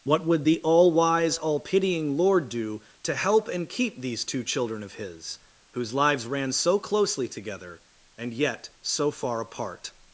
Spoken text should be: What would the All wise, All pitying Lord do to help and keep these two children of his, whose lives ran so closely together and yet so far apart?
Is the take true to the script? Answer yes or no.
yes